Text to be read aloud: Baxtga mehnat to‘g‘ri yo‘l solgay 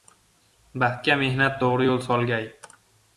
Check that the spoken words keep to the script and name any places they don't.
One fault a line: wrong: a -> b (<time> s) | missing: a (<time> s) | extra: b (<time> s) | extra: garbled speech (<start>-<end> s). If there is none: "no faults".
no faults